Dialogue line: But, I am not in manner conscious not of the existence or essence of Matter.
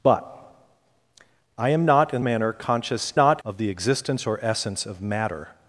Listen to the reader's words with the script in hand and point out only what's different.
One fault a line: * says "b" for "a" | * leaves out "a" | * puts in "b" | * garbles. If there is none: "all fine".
all fine